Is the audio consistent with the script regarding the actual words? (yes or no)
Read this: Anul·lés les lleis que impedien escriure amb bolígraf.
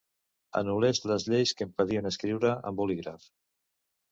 yes